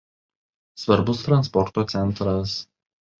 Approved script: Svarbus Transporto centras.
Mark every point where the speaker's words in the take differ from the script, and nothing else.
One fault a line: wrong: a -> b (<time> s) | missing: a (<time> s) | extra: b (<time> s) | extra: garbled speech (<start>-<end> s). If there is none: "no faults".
no faults